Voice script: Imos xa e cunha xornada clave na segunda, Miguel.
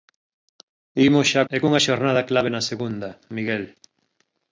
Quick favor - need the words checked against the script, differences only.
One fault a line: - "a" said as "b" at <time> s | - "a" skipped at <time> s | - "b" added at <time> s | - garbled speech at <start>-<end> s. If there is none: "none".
none